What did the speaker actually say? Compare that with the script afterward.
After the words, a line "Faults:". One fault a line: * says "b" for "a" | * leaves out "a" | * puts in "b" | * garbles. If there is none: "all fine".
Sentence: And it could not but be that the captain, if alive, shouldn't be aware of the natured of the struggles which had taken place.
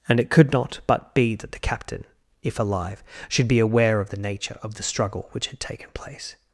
And it could not but be that the captain, if alive, should be aware of the nature of the struggle which had taken place.
Faults:
* says "should" for "shouldn't"
* says "nature" for "natured"
* says "struggle" for "struggles"